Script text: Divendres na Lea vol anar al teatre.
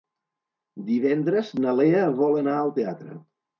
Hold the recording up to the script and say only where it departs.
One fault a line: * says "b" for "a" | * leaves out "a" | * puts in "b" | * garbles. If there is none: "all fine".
all fine